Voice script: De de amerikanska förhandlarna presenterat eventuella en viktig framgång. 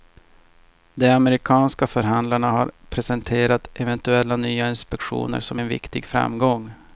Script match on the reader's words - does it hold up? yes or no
no